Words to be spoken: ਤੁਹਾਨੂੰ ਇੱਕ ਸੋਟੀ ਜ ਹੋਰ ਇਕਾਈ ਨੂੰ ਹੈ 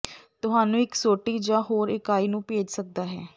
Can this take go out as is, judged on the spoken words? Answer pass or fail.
fail